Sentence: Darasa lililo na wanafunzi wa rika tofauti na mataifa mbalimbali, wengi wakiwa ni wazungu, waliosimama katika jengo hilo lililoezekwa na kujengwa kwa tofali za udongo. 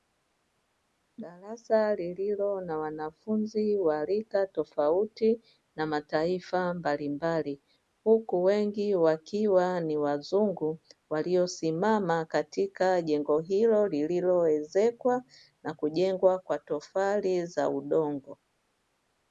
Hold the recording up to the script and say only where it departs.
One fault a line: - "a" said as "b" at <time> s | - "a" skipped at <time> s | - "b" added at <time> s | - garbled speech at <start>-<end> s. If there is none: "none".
- "huku" added at 8.0 s